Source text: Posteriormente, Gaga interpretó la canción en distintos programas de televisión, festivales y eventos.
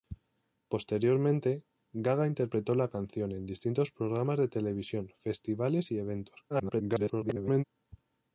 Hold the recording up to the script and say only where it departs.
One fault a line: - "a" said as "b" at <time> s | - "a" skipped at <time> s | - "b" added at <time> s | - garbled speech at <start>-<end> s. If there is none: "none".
- garbled speech at 6.5-7.6 s